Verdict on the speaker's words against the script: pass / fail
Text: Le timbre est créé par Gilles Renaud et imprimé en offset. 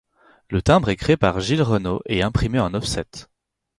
pass